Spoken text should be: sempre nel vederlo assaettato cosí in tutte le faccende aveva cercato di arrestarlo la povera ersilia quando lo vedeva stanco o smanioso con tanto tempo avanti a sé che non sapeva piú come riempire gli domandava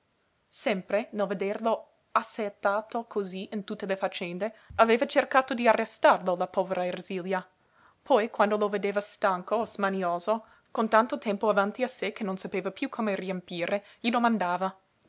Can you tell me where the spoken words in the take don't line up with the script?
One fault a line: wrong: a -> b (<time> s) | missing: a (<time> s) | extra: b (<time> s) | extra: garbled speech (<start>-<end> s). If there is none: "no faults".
extra: poi (8.0 s)